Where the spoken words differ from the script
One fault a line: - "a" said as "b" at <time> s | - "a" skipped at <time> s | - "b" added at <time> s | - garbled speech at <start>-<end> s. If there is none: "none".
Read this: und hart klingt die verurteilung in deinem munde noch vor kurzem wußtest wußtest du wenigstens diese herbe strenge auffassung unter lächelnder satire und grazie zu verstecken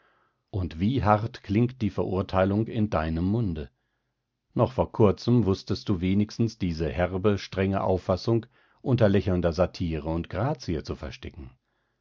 - "wie" added at 0.8 s
- "wußtest" skipped at 5.9 s